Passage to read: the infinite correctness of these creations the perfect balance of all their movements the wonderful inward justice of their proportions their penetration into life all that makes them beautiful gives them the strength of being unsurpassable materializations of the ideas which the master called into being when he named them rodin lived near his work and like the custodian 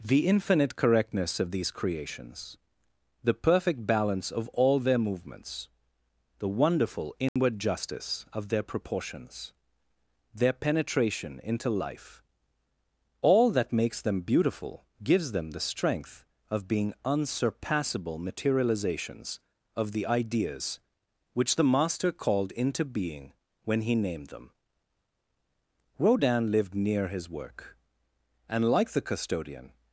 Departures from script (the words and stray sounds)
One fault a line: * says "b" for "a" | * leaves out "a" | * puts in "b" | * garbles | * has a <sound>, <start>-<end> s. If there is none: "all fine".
* has a dropout, 7.3-7.4 s